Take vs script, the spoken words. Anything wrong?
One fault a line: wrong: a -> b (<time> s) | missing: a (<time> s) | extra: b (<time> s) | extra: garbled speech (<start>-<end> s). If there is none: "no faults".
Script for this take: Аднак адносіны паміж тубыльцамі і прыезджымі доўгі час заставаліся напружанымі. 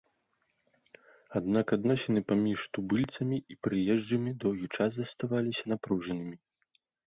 no faults